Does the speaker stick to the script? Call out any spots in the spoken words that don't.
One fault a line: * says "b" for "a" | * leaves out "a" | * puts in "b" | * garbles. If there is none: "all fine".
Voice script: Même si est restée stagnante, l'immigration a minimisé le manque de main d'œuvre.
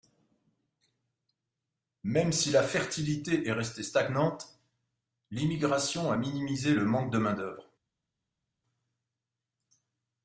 * puts in "la fertilité"